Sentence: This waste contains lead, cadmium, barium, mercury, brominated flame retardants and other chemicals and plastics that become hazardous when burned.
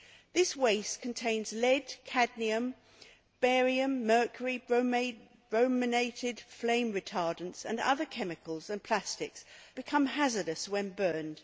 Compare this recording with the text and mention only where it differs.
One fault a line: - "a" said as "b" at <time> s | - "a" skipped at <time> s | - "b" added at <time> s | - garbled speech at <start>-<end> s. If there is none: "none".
- "that" skipped at 9.4 s